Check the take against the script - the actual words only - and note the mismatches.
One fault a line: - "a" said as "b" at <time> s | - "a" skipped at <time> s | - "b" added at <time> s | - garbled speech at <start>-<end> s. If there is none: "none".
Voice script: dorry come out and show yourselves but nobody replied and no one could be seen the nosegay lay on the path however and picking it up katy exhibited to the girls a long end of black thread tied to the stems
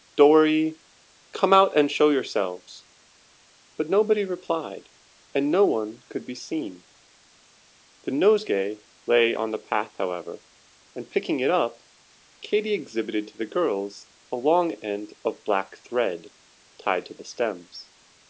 none